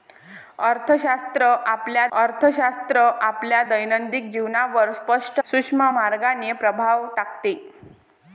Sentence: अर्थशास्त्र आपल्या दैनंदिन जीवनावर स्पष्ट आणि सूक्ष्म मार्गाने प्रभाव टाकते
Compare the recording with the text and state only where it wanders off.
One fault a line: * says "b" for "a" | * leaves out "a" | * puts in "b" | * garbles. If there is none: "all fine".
* puts in "अर्थशास्त्र आपल्या"
* leaves out "आणि"